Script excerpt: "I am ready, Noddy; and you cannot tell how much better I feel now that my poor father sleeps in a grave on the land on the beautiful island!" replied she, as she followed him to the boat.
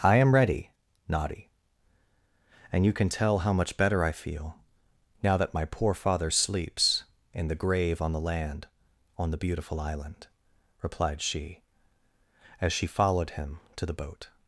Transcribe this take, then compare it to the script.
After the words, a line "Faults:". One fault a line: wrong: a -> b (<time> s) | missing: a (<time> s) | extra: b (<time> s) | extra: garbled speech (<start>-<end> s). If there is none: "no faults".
"I am ready, Noddy; and you can tell how much better I feel now that my poor father sleeps in the grave on the land on the beautiful island!" replied she, as she followed him to the boat.
Faults:
wrong: cannot -> can (2.9 s)
wrong: a -> the (7.5 s)